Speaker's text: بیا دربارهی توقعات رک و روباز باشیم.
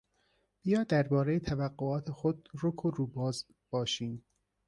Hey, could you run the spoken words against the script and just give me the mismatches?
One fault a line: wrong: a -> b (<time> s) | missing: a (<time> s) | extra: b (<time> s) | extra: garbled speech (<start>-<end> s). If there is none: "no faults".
extra: خود (2.1 s)